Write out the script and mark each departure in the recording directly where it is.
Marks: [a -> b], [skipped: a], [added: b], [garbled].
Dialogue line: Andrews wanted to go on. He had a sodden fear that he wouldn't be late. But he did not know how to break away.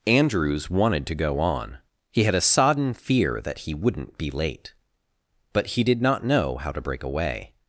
Andrews wanted to go on. He had a sodden fear that he wouldn't be late. But he did not know how to break away.